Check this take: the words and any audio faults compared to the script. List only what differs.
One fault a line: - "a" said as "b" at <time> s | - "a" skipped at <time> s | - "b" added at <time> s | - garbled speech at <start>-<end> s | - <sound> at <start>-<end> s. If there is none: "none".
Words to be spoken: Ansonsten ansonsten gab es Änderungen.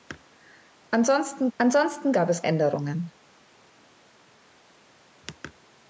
none